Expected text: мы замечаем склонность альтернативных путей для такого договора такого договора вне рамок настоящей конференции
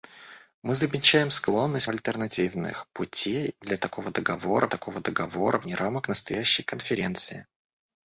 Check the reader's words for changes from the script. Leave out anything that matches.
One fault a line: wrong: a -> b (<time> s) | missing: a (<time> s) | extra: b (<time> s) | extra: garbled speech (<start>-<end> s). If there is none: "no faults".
no faults